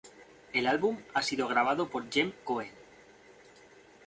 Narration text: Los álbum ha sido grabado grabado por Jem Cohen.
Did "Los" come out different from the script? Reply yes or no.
yes